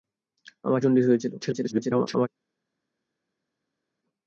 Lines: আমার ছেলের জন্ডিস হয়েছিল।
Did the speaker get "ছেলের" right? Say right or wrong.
wrong